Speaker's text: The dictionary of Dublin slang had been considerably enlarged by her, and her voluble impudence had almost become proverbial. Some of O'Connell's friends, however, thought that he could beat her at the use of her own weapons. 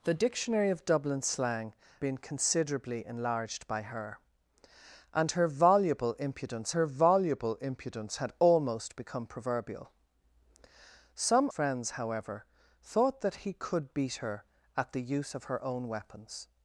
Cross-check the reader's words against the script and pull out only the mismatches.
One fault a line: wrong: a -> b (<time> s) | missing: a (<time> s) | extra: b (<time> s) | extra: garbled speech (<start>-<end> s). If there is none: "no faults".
missing: had (1.8 s)
extra: her voluble impudence (6.7 s)
missing: of O'Connell's (11.5 s)